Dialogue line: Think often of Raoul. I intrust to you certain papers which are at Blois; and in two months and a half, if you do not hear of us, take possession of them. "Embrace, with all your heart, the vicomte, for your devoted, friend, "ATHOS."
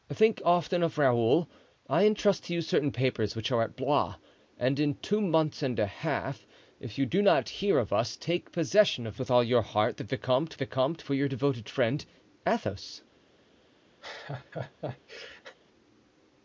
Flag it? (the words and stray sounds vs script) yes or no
yes